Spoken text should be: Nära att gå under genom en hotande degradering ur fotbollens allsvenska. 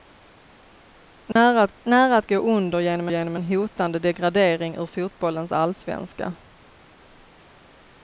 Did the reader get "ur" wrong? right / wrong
right